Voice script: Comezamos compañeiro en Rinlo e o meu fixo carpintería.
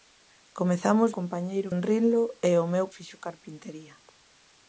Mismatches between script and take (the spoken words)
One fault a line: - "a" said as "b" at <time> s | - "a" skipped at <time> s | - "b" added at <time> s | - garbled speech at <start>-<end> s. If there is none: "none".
none